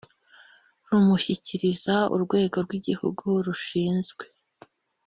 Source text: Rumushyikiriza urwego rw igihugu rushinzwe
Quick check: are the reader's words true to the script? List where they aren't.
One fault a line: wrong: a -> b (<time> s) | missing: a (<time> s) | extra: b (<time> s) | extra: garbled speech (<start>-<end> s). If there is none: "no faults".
no faults